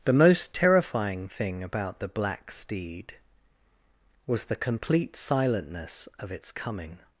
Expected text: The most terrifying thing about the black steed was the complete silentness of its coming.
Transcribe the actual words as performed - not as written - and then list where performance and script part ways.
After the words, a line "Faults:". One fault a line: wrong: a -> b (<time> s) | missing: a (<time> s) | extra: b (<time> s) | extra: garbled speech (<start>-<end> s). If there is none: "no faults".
The most terrifying thing about the black steed was the complete silentness of its coming.
Faults:
no faults